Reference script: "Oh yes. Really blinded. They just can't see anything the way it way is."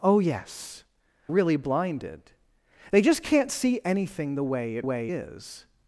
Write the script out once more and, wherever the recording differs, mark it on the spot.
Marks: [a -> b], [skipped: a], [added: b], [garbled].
"Oh yes. Really blinded. They just can't see anything the way it way is."